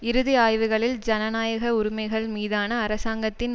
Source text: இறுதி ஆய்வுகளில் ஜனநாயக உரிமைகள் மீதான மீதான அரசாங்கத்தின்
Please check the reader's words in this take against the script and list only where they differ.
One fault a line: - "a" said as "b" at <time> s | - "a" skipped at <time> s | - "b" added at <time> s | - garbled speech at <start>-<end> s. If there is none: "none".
- "மீதான" skipped at 2.8 s